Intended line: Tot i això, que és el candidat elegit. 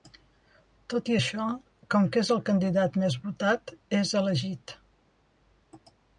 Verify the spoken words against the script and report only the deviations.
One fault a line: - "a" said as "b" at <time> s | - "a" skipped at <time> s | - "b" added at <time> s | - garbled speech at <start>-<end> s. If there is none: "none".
- "com" added at 1.9 s
- "més votat és" added at 3.0 s